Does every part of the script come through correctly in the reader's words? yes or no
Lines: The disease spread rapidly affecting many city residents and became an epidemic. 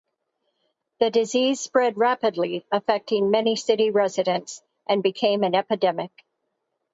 yes